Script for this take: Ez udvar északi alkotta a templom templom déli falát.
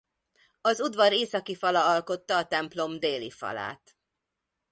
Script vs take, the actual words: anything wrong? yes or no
yes